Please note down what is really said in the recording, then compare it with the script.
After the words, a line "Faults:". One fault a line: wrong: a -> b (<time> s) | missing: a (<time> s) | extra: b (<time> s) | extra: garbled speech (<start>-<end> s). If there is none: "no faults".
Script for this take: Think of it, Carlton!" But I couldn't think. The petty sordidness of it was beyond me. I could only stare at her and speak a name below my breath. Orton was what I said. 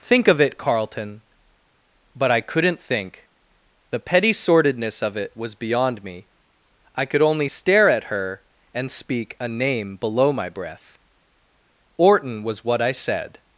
Think of it, Carlton!" But I couldn't think. The petty sordidness of it was beyond me. I could only stare at her and speak a name below my breath. Orton was what I said.
Faults:
no faults